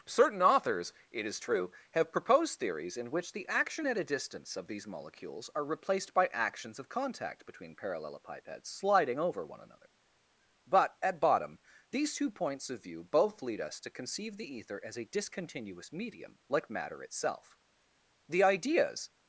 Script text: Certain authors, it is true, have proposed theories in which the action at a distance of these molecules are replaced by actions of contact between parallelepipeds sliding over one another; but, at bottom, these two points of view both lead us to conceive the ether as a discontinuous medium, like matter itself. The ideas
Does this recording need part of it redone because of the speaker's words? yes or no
no